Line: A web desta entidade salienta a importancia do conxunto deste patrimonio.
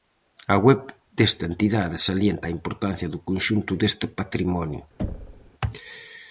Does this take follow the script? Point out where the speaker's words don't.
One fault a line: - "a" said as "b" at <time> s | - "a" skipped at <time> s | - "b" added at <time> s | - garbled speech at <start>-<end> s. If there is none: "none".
none